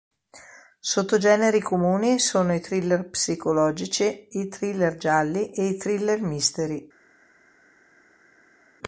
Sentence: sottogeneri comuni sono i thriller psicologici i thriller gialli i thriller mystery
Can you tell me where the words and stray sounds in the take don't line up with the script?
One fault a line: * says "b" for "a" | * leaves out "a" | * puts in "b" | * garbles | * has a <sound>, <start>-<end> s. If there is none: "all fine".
* puts in "e"